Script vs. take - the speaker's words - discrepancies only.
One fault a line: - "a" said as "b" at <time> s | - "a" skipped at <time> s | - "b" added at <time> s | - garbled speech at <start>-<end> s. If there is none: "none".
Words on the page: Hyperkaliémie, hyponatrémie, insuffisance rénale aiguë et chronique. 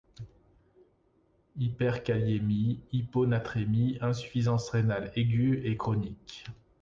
none